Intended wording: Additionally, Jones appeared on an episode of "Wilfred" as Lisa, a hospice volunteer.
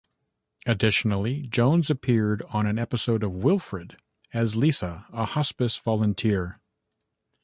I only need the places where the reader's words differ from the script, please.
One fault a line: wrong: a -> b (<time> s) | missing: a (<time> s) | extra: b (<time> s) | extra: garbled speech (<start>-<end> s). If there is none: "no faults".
no faults